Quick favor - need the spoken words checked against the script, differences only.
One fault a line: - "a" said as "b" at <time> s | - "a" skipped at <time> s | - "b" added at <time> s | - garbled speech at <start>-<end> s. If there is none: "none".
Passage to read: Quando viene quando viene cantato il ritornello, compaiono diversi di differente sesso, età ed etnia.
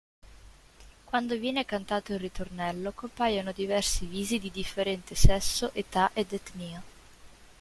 - "quando viene" skipped at 1.6 s
- "visi" added at 4.1 s